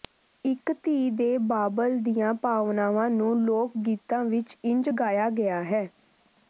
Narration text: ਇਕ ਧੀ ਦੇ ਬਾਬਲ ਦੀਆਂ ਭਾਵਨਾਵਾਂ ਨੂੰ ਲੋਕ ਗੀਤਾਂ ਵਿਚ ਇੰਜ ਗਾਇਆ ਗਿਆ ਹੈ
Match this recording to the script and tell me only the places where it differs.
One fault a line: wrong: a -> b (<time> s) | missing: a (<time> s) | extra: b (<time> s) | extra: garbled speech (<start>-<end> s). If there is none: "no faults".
no faults